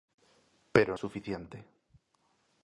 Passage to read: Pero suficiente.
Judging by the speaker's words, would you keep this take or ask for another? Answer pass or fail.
pass